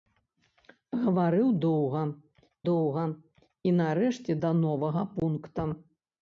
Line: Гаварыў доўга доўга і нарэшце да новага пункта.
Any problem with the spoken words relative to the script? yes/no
no